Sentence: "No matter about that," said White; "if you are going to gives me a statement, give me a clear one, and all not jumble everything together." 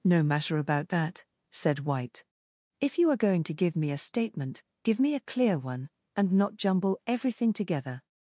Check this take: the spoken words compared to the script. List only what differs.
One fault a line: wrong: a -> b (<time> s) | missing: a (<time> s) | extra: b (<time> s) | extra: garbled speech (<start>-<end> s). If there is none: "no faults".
wrong: gives -> give (3.5 s)
missing: all (6.3 s)